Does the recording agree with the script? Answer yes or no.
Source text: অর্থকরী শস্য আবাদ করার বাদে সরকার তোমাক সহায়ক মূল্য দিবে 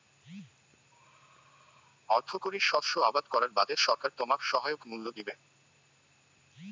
yes